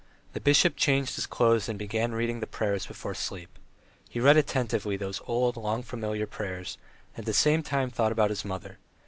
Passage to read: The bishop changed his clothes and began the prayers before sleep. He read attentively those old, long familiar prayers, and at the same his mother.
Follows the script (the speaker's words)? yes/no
no